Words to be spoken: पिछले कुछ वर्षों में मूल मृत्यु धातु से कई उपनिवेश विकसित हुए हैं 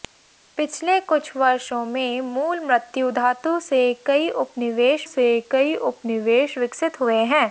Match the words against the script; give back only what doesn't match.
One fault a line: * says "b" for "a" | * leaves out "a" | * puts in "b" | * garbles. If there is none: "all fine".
* puts in "से कई उपनिवेश"